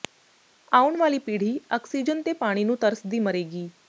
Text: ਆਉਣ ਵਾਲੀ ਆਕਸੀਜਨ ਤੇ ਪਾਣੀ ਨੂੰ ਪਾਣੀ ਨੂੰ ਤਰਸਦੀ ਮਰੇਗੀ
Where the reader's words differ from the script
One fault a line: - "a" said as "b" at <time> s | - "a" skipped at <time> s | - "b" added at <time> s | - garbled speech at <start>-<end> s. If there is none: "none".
- "ਪੀੜ੍ਹੀ" added at 1.2 s
- "ਪਾਣੀ ਨੂੰ" skipped at 2.8 s